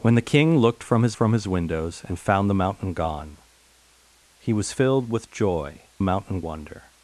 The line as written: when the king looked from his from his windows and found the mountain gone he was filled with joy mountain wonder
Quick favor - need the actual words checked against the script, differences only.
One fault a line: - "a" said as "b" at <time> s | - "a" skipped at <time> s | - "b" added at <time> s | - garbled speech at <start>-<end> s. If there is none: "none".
none